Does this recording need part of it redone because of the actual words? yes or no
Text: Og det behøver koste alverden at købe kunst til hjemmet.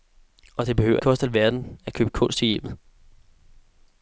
no